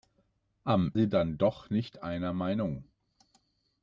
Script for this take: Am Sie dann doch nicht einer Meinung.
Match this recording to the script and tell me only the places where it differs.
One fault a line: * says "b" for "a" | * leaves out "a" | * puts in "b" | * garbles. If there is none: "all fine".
all fine